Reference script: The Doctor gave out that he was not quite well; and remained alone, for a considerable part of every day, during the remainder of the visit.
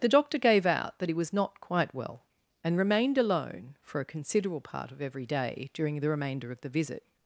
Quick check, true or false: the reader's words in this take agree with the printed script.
true